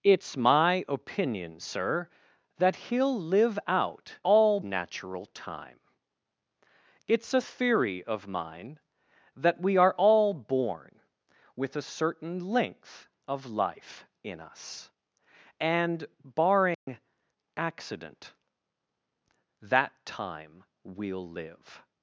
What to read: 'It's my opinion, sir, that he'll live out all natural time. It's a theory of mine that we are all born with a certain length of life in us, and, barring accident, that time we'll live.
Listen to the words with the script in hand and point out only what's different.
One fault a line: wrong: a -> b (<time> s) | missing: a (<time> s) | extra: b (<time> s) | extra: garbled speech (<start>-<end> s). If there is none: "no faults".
no faults